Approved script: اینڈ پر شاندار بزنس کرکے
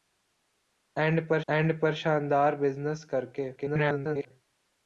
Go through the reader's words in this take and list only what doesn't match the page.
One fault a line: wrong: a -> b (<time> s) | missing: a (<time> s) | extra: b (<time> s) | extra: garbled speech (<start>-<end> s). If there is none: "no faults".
extra: اینڈ پر (1.5 s)
extra: garbled speech (3.6-4.3 s)